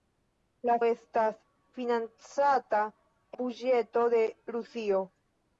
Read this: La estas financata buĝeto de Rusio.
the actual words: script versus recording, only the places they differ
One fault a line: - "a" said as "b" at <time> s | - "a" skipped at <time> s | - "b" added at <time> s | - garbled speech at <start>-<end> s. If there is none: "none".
none